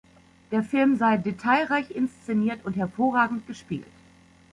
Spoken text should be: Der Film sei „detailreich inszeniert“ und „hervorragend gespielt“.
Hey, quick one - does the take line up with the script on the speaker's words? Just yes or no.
yes